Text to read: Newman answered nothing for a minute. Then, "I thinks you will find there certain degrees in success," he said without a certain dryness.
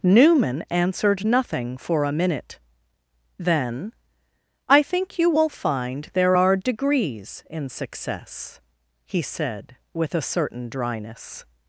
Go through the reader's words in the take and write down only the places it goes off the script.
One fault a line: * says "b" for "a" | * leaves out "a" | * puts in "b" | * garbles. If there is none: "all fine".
* says "think" for "thinks"
* says "are" for "certain"
* says "with" for "without"